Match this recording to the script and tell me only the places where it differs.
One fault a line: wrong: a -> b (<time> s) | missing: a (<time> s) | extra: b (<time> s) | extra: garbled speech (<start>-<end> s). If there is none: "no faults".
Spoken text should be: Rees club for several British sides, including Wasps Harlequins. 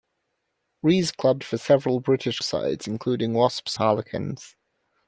no faults